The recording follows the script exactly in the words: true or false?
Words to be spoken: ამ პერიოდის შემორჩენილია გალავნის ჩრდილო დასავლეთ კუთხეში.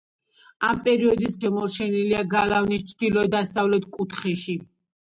true